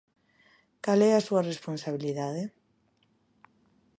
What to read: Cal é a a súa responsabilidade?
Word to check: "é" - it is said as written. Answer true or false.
true